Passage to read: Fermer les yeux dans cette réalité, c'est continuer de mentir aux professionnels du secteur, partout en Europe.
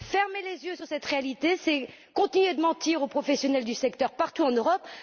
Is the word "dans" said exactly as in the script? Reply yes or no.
no